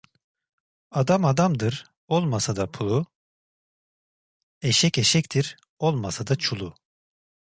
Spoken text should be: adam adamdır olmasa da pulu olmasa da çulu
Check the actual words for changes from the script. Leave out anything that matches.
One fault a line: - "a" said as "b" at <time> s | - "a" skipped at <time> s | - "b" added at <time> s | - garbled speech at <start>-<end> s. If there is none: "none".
- "eşek eşektir" added at 4.6 s